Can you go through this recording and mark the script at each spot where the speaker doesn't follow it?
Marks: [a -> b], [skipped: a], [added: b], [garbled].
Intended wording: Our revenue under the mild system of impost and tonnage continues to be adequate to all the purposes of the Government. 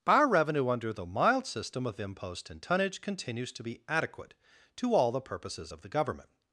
Our revenue under the mild system of impost and tonnage continues to be adequate to all the purposes of the Government.